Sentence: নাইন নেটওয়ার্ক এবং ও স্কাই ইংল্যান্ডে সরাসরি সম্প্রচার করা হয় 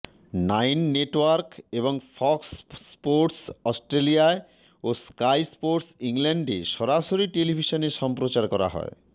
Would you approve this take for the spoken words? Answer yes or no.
no